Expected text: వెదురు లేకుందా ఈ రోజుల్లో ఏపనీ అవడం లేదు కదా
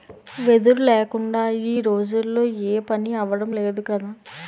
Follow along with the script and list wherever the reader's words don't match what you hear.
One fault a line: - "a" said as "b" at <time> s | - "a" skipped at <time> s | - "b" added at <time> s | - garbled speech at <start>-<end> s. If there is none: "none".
none